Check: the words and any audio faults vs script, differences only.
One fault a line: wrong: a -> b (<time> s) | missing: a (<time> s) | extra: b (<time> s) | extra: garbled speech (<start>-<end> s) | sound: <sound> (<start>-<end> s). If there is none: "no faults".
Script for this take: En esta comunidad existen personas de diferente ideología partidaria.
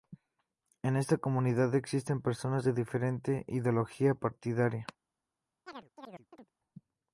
sound: chirp (5.7-6.5 s)